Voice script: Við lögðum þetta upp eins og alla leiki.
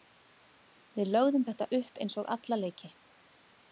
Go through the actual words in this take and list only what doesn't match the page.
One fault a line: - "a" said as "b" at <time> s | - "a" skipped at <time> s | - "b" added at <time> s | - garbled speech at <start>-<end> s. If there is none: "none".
none